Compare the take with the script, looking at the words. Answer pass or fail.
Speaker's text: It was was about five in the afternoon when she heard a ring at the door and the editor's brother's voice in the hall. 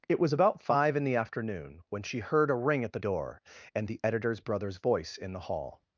fail